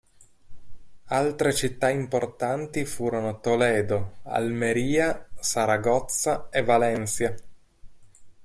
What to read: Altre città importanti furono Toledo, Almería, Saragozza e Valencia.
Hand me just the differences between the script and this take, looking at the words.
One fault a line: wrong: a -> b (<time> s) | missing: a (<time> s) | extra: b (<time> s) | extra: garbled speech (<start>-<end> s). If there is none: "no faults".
no faults